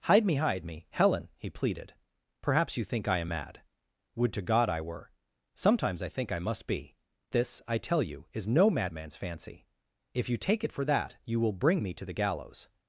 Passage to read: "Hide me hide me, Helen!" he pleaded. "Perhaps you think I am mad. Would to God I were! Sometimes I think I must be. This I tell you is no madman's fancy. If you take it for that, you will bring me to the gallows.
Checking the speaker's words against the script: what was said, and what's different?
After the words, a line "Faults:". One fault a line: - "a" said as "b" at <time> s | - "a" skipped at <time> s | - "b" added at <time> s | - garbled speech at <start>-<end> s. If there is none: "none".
"Hide me hide me, Helen!" he pleaded. "Perhaps you think I am mad. Would to God I were! Sometimes I think I must be. This I tell you is no madman's fancy. If you take it for that, you will bring me to the gallows.
Faults:
none